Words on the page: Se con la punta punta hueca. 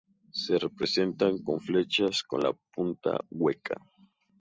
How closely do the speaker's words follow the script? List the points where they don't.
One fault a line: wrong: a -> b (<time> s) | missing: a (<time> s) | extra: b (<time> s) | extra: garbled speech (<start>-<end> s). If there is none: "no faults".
extra: representan (0.6 s)
extra: flechas con (1.6 s)
missing: punta (3.2 s)